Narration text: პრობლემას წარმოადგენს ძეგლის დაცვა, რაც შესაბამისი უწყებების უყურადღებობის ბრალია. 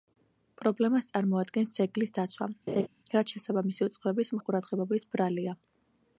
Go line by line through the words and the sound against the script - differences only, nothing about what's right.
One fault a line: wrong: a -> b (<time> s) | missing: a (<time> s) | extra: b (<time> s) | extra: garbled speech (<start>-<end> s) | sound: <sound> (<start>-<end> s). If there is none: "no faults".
sound: laugh (2.7-2.9 s)